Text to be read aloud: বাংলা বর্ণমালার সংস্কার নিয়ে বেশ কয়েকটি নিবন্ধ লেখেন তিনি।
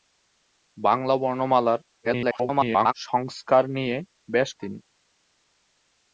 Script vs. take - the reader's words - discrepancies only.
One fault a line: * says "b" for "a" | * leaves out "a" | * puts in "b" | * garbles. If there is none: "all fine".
* garbles
* leaves out "কয়েকটি নিবন্ধ লেখেন"